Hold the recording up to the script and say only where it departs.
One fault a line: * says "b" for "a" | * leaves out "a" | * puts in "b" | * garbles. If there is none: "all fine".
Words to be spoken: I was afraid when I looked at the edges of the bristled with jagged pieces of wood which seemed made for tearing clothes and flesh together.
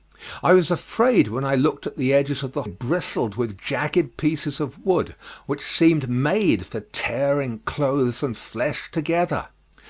all fine